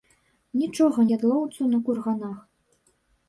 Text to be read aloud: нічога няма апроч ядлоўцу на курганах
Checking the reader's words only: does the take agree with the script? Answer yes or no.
no